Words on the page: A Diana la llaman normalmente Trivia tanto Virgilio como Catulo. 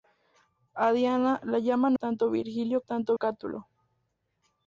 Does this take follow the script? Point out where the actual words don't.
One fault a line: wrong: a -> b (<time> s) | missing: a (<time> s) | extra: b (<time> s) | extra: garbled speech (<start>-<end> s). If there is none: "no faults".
missing: normalmente Trivia (1.9 s)
wrong: como -> tanto (2.9 s)